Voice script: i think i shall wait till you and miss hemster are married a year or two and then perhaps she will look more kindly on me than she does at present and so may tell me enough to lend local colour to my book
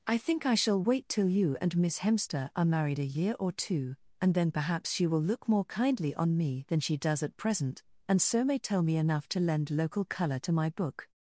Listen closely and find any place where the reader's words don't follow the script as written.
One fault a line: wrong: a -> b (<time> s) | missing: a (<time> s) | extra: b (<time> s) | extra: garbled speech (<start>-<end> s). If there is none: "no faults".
no faults